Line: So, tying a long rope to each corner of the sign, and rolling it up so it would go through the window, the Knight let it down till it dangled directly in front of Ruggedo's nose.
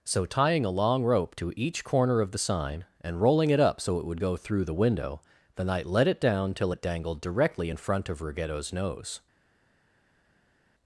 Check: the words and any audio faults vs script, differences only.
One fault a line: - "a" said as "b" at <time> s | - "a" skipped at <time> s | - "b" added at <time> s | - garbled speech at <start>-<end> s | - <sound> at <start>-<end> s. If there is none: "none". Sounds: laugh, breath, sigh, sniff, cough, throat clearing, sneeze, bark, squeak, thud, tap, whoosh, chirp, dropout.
none